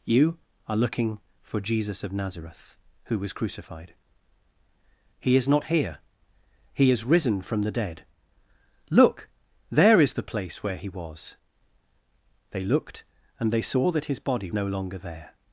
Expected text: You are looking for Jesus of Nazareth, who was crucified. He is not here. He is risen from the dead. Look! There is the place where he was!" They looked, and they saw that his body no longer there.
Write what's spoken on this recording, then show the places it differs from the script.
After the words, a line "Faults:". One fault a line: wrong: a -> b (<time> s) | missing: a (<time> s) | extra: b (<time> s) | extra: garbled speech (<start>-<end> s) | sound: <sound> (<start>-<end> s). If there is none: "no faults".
You are looking for Jesus of Nazareth, who was crucified. He is not here. He is risen from the dead. Look! There is the place where he was!" They looked, and they saw that his body no longer there.
Faults:
no faults